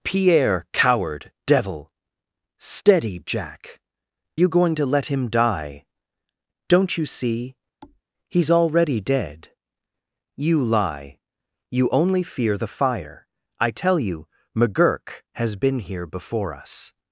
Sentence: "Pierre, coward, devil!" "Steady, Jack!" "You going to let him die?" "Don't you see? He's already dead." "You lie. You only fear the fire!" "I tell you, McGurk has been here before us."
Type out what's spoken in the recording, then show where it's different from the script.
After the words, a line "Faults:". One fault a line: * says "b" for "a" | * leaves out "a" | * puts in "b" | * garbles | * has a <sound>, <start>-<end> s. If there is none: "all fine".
"Pierre, coward, devil!" "Steady, Jack!" "You going to let him die?" "Don't you see? He's already dead." "You lie. You only fear the fire!" "I tell you, McGurk has been here before us."
Faults:
* has a thud, 7.8-8.0 s